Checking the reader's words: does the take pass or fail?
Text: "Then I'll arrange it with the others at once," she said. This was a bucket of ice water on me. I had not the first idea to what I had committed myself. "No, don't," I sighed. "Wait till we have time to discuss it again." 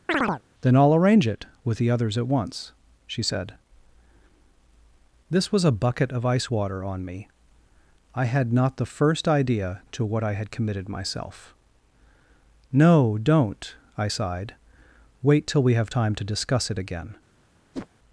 pass